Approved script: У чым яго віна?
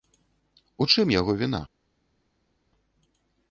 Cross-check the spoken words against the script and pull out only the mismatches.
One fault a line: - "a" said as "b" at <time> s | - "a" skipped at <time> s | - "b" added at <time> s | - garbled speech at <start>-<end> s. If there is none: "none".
none